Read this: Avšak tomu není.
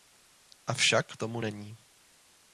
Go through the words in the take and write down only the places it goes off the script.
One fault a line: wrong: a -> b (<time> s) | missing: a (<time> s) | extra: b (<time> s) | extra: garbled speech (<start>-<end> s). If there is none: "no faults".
no faults